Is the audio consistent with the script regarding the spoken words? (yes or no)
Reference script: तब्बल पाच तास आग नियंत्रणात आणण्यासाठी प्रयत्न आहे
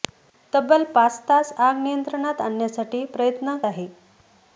yes